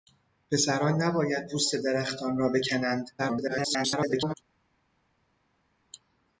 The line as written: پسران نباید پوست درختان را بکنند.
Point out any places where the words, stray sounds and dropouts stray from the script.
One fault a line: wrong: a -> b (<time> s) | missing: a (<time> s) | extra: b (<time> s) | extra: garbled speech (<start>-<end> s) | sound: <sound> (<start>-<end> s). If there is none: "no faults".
extra: garbled speech (3.2-4.3 s)